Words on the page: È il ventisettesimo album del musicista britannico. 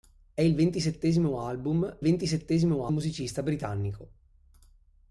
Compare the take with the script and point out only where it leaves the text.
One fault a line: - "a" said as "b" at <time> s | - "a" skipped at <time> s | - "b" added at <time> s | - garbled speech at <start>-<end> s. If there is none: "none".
- "del" said as "ventisettesimo" at 2.0 s